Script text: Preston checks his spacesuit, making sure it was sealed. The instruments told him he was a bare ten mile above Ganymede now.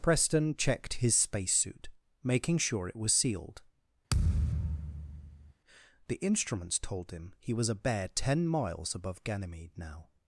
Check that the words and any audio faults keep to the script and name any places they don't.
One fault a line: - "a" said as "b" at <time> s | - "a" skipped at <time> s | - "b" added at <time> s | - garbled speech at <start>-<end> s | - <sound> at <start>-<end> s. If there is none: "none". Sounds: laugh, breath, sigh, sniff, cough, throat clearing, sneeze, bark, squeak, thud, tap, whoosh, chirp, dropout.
- "checks" said as "checked" at 0.6 s
- thud at 4.1-5.5 s
- "mile" said as "miles" at 8.5 s